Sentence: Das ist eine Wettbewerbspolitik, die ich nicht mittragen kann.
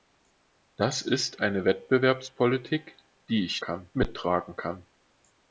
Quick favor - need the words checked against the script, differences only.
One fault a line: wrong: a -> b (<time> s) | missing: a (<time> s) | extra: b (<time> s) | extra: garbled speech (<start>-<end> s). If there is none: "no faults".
wrong: nicht -> kann (3.6 s)